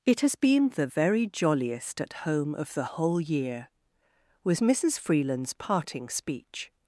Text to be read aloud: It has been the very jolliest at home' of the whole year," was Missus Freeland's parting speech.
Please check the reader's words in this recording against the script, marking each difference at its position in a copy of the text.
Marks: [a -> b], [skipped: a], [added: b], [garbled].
It has been the very jolliest at home' of the whole year," was Missus Freeland's parting speech.